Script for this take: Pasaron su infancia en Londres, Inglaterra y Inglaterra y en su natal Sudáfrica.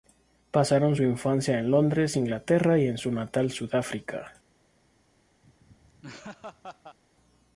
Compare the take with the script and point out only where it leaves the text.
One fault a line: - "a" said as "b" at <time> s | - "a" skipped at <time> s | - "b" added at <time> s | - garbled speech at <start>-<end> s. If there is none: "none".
- "Inglaterra y" skipped at 2.9 s